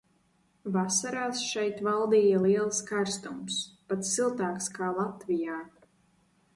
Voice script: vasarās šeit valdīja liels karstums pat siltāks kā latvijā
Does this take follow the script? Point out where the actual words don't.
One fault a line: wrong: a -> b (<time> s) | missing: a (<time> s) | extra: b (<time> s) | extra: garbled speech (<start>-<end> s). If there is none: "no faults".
no faults